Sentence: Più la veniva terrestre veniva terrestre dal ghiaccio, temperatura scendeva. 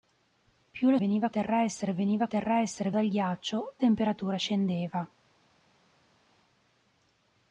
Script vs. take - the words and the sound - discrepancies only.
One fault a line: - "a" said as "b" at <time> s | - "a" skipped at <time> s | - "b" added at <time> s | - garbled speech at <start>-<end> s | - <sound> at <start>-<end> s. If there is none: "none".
none